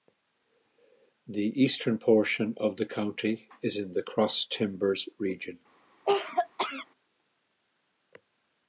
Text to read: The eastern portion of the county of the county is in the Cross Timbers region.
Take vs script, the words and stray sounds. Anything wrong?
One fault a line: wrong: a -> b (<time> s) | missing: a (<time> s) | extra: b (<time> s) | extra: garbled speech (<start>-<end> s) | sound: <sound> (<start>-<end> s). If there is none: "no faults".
missing: of the county (3.5 s)
sound: cough (6.0-6.9 s)